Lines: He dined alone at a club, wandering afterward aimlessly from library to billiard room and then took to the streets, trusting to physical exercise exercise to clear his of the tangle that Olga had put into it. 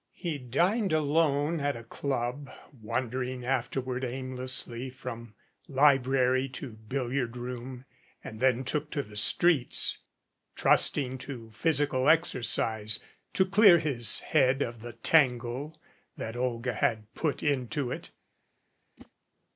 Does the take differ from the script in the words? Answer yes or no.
yes